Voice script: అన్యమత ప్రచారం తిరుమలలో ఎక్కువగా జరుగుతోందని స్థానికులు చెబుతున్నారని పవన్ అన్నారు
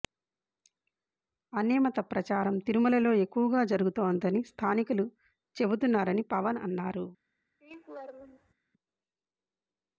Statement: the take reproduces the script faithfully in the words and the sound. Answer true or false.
false